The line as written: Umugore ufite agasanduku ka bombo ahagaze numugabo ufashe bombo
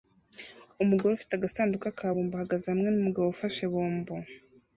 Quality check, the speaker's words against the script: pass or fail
fail